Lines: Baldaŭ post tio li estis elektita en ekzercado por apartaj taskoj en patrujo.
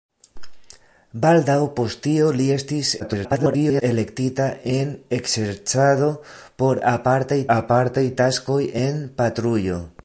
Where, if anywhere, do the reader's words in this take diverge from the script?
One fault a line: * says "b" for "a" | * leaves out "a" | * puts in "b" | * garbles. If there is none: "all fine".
* garbles
* puts in "apartaj"